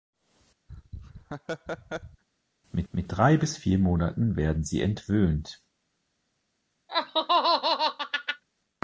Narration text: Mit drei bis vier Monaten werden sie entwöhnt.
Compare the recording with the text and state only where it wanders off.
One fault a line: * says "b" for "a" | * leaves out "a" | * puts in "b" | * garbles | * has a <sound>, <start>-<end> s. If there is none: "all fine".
* has a laugh, 0.7-2.2 s
* puts in "mit"
* has a laugh, 6.9-8.4 s